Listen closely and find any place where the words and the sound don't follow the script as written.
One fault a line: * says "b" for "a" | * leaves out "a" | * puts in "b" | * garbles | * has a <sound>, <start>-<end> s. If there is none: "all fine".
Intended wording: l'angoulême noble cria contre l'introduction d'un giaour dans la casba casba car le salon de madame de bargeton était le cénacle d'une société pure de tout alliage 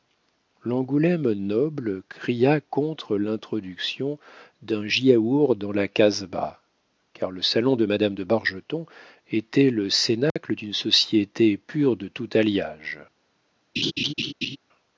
* leaves out "casba"
* has a dropout, 10.3-10.4 s
* has a laugh, 13.8-14.6 s